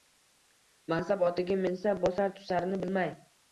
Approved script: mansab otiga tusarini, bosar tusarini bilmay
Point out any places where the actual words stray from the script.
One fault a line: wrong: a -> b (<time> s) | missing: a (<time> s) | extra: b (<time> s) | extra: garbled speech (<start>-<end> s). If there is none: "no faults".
wrong: tusarini -> minsa (1.7 s)